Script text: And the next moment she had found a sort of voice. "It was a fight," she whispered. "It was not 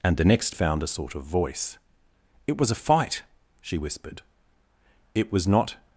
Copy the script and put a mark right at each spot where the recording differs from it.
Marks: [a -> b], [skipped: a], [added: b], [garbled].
And the next [skipped: moment she had] found a sort of voice. "It was a fight," she whispered. "It was not